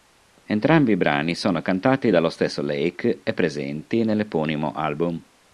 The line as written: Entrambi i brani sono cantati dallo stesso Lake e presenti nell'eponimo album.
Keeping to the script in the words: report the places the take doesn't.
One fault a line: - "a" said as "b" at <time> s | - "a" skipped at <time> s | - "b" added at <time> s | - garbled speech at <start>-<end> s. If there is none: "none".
none